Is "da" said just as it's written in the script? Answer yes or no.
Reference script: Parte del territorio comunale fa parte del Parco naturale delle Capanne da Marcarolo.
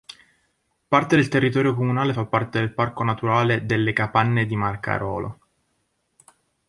no